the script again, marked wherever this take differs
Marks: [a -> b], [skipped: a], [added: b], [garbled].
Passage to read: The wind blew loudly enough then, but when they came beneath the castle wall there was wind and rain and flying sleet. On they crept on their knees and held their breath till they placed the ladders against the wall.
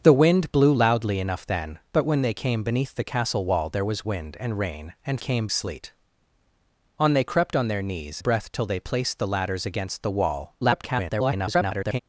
The wind blew loudly enough then, but when they came beneath the castle wall there was wind and rain and [flying -> came] sleet. On they crept on their knees [skipped: and held their] breath till they placed the ladders against the wall. [garbled]